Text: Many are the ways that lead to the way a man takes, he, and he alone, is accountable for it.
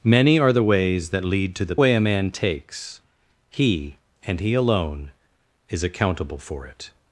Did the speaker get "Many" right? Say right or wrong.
right